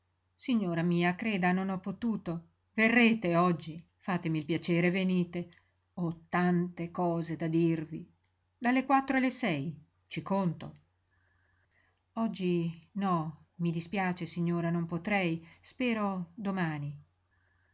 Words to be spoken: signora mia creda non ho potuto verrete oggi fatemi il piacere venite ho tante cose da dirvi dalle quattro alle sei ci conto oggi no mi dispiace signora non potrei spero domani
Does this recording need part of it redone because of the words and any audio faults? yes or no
no